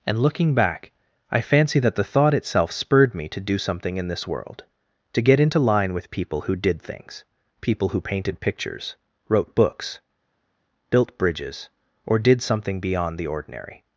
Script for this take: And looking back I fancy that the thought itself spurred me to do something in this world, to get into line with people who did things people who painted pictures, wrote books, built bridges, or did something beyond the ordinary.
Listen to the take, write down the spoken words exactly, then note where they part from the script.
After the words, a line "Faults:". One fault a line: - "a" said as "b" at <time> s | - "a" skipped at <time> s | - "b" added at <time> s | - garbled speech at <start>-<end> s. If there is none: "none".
And looking back I fancy that the thought itself spurred me to do something in this world, to get into line with people who did things people who painted pictures, wrote books, built bridges, or did something beyond the ordinary.
Faults:
none